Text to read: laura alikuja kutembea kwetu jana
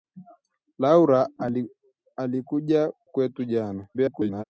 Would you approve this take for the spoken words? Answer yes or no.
no